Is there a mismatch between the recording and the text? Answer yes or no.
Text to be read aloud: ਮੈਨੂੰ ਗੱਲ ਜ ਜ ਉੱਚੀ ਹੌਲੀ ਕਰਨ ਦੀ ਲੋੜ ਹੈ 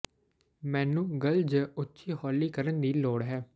yes